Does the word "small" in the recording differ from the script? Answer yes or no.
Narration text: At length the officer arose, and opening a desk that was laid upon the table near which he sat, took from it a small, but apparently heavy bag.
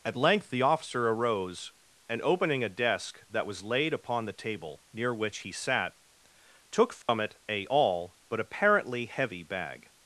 yes